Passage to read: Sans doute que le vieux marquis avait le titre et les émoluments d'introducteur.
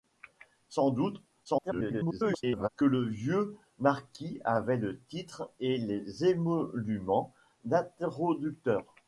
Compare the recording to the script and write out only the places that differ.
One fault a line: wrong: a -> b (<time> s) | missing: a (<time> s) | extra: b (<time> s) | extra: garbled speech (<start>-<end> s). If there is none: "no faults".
extra: garbled speech (1.4-2.7 s)